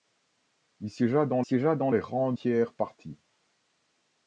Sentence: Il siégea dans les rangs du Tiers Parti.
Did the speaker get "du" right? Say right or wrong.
wrong